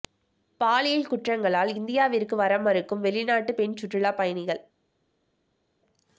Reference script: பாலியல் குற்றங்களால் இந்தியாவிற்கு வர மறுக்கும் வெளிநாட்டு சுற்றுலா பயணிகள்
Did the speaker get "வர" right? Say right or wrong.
right